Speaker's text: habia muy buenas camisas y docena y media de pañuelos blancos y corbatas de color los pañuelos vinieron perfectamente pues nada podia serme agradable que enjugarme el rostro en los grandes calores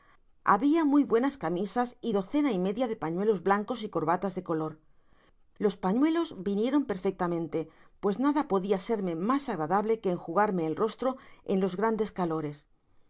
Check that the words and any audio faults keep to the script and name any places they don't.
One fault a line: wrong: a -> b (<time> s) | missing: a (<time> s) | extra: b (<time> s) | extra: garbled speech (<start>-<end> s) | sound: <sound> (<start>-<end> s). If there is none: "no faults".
extra: mas (9.2 s)